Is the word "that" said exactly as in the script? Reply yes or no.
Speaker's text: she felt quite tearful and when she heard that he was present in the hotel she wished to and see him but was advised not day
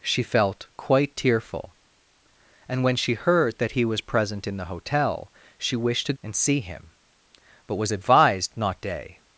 yes